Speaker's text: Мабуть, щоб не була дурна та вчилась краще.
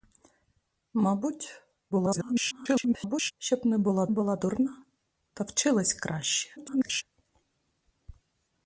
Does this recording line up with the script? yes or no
no